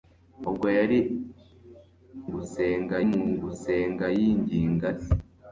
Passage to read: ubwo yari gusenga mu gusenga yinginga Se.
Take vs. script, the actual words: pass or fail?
pass